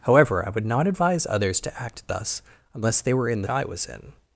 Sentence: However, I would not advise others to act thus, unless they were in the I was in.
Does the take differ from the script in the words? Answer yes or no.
no